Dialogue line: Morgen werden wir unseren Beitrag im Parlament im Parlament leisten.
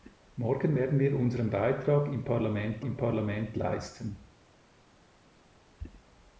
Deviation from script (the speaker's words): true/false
false